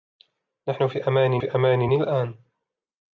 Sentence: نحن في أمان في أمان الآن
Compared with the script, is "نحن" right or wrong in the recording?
right